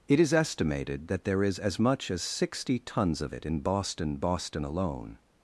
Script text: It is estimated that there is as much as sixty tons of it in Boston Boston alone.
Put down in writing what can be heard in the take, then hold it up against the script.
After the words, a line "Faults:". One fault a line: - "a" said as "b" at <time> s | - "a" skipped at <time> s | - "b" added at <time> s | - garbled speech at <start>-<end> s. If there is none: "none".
It is estimated that there is as much as sixty tons of it in Boston Boston alone.
Faults:
none